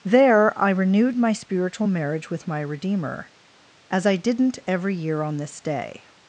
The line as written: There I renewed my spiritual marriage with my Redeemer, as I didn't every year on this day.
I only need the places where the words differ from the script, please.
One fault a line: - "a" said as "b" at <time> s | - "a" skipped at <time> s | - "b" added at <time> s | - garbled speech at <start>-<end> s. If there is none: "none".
none